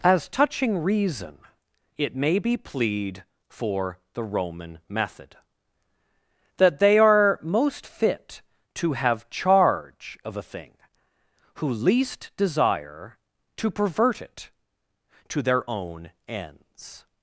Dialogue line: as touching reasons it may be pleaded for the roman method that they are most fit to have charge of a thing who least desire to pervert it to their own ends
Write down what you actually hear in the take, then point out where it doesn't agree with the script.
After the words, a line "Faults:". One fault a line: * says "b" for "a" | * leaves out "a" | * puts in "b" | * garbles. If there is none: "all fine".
as touching reason it may be plead for the roman method that they are most fit to have charge of a thing who least desire to pervert it to their own ends
Faults:
* says "reason" for "reasons"
* says "plead" for "pleaded"